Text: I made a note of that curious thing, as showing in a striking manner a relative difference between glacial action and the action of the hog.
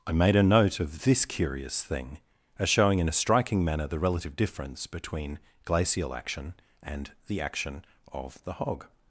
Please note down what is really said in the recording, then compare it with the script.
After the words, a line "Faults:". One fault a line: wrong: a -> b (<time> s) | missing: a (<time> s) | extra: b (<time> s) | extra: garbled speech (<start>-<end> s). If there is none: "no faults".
I made a note of this curious thing, as showing in a striking manner the relative difference between glacial action and the action of the hog.
Faults:
wrong: that -> this (1.0 s)
wrong: a -> the (3.9 s)